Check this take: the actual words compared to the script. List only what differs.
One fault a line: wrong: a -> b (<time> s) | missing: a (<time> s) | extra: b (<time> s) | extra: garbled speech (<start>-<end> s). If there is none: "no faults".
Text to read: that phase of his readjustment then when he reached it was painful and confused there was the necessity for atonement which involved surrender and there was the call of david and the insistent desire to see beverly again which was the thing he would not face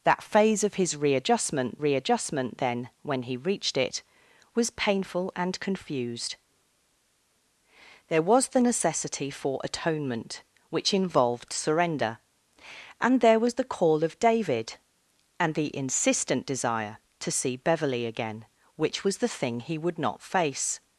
extra: readjustment (1.8 s)